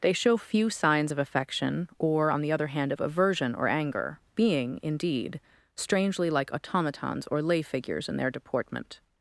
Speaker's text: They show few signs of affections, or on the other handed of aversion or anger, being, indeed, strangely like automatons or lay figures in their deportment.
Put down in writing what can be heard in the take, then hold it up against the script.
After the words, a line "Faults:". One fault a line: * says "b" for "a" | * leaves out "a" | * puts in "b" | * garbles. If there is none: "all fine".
They show few signs of affection, or on the other hand of aversion or anger, being, indeed, strangely like automatons or lay figures in their deportment.
Faults:
* says "affection" for "affections"
* says "hand" for "handed"